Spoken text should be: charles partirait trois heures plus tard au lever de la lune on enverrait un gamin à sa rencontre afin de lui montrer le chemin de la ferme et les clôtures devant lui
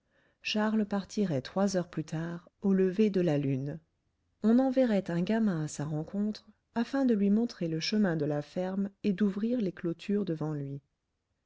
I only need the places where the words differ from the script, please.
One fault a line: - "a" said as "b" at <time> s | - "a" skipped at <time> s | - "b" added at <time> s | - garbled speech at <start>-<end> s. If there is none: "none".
- "d'ouvrir" added at 9.1 s